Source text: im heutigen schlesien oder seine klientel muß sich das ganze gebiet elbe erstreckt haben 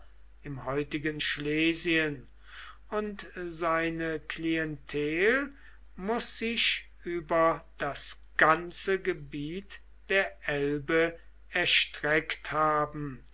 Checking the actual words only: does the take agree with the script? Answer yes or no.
no